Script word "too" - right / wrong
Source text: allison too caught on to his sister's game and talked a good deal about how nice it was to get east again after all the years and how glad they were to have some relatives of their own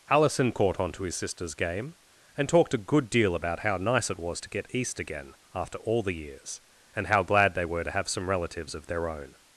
wrong